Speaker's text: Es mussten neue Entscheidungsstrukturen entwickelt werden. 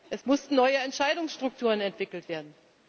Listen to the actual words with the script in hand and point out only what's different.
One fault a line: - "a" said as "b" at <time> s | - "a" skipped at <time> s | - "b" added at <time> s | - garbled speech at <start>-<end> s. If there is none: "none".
none